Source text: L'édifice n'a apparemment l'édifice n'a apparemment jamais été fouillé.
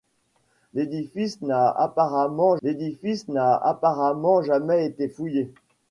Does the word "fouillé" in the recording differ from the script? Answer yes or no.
no